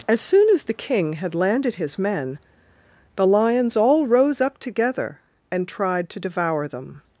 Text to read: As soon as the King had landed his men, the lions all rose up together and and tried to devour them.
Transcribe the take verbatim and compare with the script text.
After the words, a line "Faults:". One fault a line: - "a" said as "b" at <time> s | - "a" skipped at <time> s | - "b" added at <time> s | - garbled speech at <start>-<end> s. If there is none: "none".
As soon as the King had landed his men, the lions all rose up together and tried to devour them.
Faults:
- "and" skipped at 5.7 s